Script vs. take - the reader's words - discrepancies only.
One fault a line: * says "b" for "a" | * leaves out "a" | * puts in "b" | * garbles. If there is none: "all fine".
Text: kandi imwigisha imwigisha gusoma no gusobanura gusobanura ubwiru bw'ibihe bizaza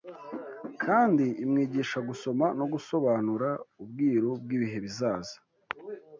* leaves out "imwigisha"
* leaves out "gusobanura"